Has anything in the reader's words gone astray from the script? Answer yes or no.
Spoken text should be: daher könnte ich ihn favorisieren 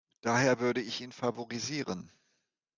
yes